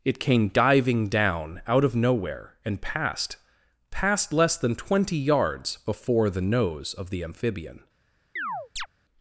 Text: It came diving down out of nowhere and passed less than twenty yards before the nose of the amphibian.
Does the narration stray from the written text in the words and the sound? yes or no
yes